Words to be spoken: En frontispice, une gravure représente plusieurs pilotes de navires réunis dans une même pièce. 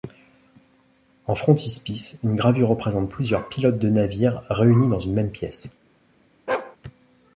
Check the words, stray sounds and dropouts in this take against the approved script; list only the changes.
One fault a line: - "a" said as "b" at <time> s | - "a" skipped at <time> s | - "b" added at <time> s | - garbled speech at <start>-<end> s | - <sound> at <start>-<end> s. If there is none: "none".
- bark at 6.5-6.8 s